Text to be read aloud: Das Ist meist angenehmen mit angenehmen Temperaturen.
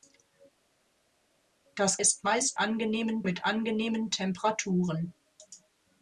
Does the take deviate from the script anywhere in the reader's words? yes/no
no